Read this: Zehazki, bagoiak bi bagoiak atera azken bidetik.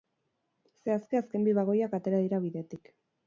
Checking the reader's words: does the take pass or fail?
fail